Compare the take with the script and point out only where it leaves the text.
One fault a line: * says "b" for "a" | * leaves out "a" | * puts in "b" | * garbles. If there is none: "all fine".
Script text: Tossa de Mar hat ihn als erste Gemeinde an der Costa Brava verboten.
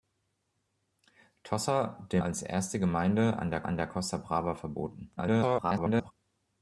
* leaves out "Mar hat ihn"
* puts in "an der"
* garbles